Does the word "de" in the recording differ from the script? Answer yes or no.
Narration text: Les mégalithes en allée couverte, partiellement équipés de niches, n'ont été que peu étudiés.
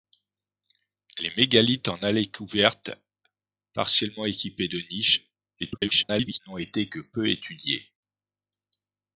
no